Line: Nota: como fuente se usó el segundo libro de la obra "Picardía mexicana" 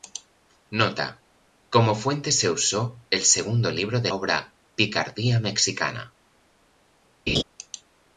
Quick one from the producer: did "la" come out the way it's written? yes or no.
no